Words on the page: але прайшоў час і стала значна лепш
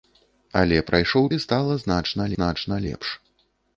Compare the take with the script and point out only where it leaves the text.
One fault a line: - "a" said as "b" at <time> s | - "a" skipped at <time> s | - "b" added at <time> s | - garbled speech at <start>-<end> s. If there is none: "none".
- "час" skipped at 1.3 s
- "значна" added at 2.3 s